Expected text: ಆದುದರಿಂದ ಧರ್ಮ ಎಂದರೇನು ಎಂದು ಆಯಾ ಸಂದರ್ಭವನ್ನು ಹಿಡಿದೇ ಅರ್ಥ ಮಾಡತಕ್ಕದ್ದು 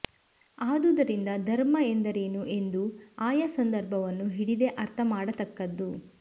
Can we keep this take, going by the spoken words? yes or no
yes